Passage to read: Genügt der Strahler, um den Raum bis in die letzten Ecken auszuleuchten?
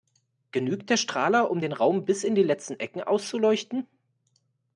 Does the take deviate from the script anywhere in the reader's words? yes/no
no